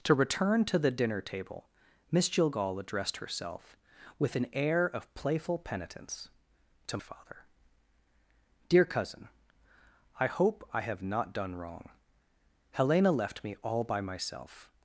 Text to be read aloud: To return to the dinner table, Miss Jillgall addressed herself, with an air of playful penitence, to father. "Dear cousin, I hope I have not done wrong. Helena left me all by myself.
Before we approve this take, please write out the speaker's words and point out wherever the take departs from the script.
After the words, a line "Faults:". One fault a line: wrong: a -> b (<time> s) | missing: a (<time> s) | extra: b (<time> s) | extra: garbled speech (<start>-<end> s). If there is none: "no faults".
To return to the dinner table, Miss Jillgall addressed herself, with an air of playful penitence, to father. "Dear cousin, I hope I have not done wrong. Helena left me all by myself.
Faults:
no faults